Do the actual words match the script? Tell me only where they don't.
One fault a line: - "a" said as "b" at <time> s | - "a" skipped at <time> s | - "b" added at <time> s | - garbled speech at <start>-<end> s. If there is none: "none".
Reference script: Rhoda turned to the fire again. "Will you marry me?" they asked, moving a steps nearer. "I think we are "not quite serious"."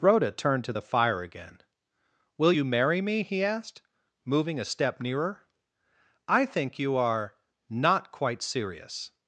- "they" said as "he" at 3.2 s
- "steps" said as "step" at 4.6 s
- "we" said as "you" at 6.8 s